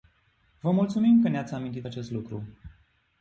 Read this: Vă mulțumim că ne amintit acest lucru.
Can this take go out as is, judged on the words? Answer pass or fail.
fail